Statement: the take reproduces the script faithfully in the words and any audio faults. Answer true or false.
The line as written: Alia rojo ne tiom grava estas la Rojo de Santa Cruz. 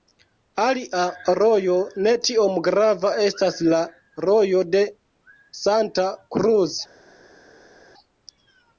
true